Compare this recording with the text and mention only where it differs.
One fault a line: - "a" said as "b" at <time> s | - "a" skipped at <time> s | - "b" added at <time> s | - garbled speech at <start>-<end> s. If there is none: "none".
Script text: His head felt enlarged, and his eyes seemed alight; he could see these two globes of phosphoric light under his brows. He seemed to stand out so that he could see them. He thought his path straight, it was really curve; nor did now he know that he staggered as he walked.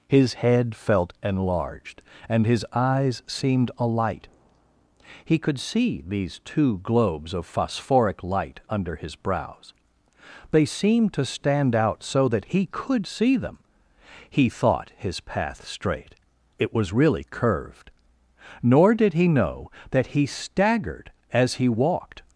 - "He" said as "They" at 10.5 s
- "curve" said as "curved" at 17.2 s
- "now" skipped at 19.1 s